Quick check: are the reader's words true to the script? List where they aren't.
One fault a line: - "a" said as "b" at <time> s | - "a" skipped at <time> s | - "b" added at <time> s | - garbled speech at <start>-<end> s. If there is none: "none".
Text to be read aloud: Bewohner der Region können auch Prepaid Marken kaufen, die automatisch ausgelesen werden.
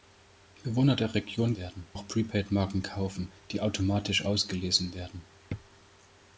- "können" said as "werden" at 1.6 s